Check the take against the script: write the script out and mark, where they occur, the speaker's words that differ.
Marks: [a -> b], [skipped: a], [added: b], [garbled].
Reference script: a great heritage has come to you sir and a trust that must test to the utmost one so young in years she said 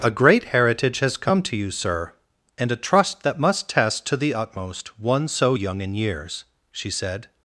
a great heritage has come to you sir and a trust that must test to the utmost one so young in years she said